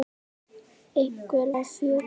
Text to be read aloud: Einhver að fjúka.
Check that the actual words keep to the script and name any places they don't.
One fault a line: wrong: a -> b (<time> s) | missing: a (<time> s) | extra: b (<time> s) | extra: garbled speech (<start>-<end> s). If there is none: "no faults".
no faults